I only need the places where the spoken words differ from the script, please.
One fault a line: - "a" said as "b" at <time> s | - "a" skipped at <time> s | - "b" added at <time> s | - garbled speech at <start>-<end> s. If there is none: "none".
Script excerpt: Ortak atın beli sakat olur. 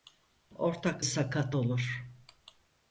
- "atın beli" skipped at 1.1 s